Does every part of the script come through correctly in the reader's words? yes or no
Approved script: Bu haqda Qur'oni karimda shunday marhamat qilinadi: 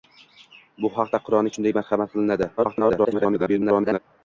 no